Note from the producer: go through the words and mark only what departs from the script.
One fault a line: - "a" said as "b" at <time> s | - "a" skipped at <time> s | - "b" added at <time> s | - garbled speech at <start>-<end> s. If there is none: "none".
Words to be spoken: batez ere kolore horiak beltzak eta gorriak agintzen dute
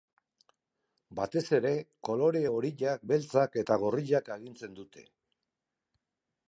none